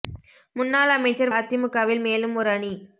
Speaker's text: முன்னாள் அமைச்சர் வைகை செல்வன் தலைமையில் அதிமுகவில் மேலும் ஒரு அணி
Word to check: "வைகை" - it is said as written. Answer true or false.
false